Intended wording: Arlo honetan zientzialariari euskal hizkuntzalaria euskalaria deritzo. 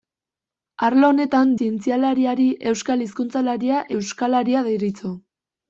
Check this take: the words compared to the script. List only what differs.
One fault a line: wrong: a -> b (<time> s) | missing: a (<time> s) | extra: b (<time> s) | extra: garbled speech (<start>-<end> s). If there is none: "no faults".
no faults